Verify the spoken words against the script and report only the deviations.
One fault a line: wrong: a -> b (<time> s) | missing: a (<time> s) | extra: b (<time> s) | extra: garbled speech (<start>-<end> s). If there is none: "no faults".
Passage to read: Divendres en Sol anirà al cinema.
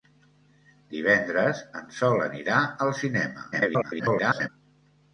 extra: garbled speech (3.5-4.5 s)